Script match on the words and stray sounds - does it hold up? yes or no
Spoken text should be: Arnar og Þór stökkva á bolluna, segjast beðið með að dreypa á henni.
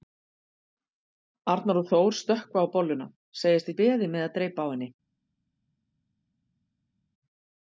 yes